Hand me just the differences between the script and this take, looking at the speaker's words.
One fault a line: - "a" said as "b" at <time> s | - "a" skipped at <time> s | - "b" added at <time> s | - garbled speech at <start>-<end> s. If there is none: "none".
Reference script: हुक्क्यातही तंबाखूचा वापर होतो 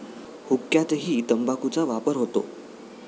none